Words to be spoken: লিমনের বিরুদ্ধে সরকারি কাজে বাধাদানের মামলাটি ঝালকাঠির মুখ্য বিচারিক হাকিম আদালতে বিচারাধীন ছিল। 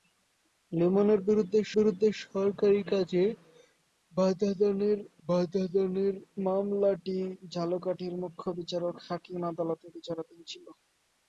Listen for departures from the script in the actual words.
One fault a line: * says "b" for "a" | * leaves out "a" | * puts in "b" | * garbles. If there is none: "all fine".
* puts in "বিরুদ্ধে"
* puts in "বাধাদানের"